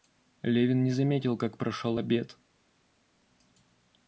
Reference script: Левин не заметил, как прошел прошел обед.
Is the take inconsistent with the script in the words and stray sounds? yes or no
yes